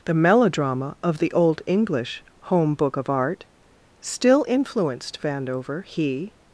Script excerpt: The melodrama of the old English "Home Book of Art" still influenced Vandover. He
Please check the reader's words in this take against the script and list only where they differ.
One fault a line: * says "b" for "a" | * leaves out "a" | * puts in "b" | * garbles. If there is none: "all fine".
all fine